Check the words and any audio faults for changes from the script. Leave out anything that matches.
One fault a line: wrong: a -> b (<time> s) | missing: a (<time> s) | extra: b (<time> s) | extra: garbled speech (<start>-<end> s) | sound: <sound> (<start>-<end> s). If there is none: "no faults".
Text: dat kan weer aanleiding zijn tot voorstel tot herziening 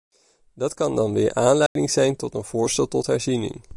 extra: dan (0.9 s)
sound: dropout (1.7-1.8 s)
extra: een (2.3 s)